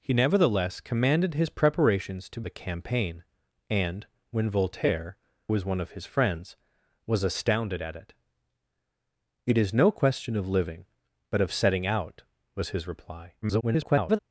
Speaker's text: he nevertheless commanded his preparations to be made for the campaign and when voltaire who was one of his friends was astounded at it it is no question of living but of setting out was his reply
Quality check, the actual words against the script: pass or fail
fail